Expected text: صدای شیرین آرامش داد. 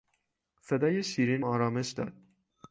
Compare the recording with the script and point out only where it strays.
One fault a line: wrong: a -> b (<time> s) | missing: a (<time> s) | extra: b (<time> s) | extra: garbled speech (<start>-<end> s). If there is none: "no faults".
no faults